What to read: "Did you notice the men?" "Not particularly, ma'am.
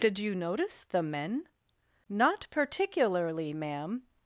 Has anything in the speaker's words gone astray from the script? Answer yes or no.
no